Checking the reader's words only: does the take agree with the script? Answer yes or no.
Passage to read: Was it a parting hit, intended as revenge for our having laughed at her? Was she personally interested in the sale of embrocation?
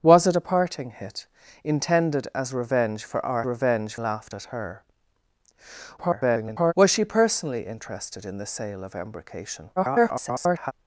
no